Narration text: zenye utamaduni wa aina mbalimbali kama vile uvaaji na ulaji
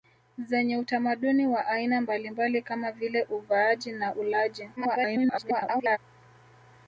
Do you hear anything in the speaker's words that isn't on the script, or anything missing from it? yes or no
yes